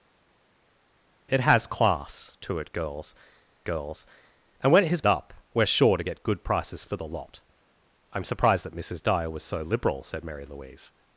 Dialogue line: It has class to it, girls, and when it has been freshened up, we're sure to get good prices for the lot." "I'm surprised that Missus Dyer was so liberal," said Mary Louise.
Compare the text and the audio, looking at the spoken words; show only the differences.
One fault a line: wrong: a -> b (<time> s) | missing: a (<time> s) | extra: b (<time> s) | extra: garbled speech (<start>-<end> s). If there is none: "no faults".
extra: girls (3.6 s)
missing: been freshened (5.0 s)